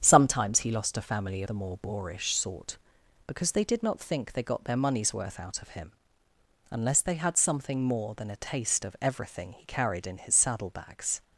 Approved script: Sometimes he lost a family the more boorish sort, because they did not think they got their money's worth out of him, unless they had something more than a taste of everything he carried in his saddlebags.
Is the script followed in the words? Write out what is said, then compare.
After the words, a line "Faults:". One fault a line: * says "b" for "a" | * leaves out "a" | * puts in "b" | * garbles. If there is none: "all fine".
Sometimes he lost a family the more boorish sort, because they did not think they got their money's worth out of him, unless they had something more than a taste of everything he carried in his saddlebags.
Faults:
all fine